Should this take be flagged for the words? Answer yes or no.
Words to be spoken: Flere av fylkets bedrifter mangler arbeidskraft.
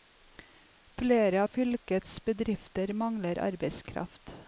no